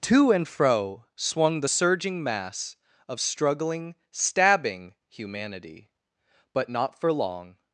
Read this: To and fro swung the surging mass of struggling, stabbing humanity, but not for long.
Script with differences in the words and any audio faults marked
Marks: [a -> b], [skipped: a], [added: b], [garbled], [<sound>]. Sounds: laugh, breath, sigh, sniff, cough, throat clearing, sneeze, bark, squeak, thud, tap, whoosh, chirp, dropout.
To and fro swung the surging mass of struggling, stabbing humanity, but not for long.